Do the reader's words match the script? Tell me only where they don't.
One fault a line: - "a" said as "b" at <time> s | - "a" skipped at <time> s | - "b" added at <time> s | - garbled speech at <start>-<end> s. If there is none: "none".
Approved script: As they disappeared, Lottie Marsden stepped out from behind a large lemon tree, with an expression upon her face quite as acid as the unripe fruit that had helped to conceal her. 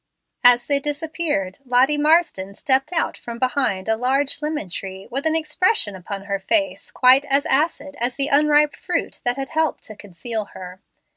none